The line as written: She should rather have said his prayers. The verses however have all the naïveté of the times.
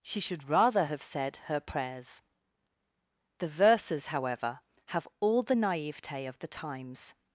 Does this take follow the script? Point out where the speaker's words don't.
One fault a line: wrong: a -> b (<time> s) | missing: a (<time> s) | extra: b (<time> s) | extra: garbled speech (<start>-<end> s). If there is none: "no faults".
wrong: his -> her (1.5 s)